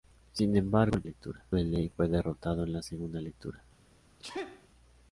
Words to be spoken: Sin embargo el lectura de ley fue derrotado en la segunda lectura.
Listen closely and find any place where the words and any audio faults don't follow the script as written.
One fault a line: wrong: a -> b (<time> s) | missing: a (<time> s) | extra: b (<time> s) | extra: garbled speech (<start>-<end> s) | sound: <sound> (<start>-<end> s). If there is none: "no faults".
sound: sneeze (4.2-4.7 s)